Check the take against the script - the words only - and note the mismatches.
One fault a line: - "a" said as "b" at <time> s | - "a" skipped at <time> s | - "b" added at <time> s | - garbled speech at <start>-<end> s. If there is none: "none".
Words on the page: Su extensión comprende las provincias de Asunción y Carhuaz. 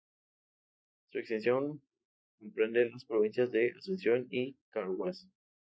none